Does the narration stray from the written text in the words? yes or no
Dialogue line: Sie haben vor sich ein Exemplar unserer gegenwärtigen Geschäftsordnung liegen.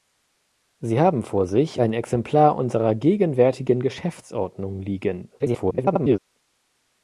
yes